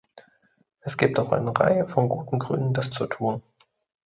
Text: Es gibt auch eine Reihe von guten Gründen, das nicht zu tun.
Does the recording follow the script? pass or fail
fail